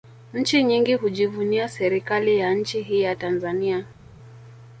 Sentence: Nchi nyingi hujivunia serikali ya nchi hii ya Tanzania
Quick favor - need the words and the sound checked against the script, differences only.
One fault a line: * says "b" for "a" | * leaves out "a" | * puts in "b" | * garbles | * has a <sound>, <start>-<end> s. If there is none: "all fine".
all fine